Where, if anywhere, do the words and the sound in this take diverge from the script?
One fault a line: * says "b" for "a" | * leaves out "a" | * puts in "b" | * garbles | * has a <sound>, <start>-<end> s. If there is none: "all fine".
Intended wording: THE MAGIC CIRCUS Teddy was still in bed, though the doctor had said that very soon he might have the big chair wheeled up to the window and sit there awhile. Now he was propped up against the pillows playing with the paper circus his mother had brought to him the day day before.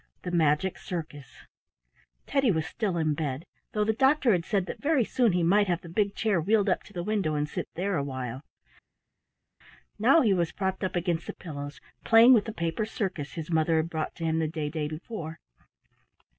all fine